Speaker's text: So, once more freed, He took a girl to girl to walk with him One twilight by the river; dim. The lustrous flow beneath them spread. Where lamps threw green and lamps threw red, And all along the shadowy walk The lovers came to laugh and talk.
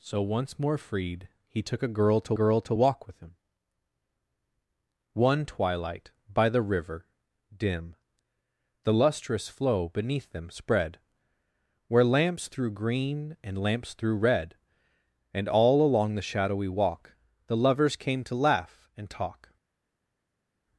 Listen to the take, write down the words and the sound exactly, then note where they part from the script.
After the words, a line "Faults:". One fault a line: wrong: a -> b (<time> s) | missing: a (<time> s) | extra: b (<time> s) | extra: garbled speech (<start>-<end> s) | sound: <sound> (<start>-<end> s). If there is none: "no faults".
So, once more freed, He took a girl to girl to walk with him One twilight by the river; dim. The lustrous flow beneath them spread. Where lamps threw green and lamps threw red, And all along the shadowy walk The lovers came to laugh and talk.
Faults:
no faults